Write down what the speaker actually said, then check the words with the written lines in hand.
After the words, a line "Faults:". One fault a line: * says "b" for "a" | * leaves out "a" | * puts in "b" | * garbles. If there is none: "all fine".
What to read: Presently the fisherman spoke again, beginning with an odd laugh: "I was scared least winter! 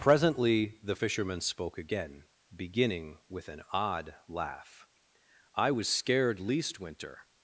Presently the fisherman spoke again, beginning with an odd laugh: "I was scared least winter!
Faults:
all fine